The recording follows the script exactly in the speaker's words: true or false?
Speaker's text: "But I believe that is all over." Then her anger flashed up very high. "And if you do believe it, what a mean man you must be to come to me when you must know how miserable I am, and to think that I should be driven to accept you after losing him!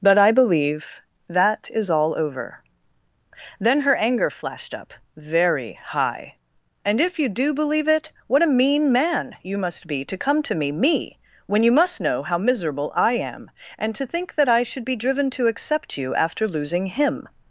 false